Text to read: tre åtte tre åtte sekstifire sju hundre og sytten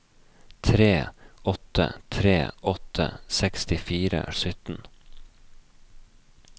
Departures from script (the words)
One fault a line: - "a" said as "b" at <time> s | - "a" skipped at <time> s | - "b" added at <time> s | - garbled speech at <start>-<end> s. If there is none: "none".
- "sju hundre" skipped at 4.2 s